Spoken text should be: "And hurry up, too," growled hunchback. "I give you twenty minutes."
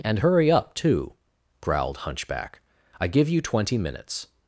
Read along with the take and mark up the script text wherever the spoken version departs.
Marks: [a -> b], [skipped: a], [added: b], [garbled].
"And hurry up, too," growled hunchback. "I give you twenty minutes."